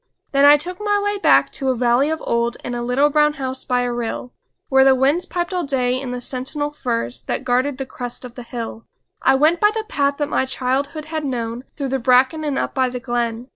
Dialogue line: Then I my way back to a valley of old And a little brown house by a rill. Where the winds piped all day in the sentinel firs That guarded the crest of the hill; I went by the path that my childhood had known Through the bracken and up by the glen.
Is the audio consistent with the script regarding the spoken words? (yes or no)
no